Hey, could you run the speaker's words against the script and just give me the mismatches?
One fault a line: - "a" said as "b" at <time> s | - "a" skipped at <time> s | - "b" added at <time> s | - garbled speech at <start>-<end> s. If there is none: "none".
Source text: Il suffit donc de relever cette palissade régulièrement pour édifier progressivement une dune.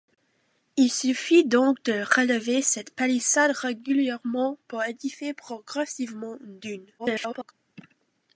- garbled speech at 7.0-7.5 s